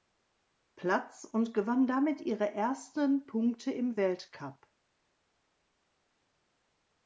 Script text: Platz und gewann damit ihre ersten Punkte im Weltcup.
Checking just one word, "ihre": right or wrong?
right